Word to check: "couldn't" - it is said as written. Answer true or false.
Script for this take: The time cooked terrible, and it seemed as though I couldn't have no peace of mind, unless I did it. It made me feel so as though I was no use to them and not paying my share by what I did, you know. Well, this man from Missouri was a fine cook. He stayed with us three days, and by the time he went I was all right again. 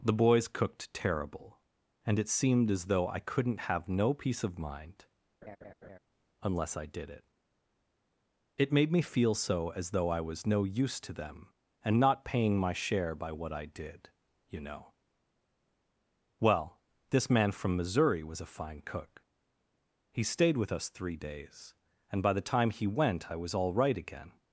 true